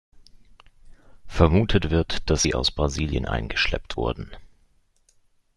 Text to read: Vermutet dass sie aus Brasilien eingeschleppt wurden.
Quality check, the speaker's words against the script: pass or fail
fail